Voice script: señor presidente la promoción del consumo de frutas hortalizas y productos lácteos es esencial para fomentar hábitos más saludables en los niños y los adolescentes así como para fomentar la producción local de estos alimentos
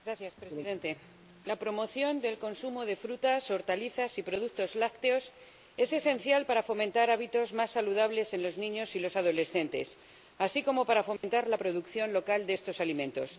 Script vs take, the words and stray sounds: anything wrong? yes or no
yes